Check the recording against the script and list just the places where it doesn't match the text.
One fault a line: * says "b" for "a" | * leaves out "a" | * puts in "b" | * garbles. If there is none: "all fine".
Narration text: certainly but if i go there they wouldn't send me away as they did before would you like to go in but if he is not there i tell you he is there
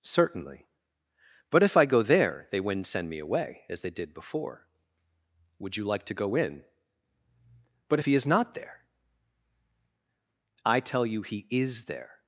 all fine